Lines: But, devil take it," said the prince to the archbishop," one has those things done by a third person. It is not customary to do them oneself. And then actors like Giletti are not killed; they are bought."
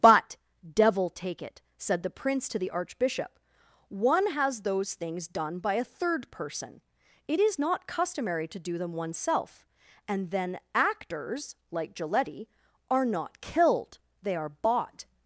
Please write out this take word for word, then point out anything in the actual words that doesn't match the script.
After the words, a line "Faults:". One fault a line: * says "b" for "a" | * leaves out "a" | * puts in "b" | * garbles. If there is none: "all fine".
But, devil take it," said the prince to the archbishop," one has those things done by a third person. It is not customary to do them oneself. And then actors like Giletti are not killed; they are bought."
Faults:
all fine